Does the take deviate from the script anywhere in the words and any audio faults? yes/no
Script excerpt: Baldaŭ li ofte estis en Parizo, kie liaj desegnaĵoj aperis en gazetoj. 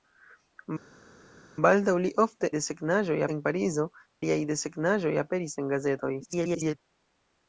yes